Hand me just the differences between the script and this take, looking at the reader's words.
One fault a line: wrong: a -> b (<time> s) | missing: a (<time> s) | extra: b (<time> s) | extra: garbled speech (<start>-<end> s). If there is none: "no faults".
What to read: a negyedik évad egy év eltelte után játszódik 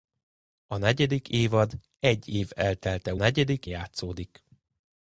wrong: után -> negyedik (3.1 s)